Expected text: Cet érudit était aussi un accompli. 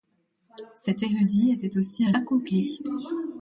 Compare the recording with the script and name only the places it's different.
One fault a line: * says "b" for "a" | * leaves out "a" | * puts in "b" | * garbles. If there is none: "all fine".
all fine